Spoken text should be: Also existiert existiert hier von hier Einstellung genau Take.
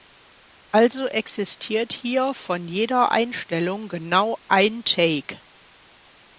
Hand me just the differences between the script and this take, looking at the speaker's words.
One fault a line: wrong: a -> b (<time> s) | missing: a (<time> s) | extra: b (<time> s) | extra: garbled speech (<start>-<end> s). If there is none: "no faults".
missing: existiert (1.9 s)
wrong: hier -> jeder (2.7 s)
extra: ein (4.5 s)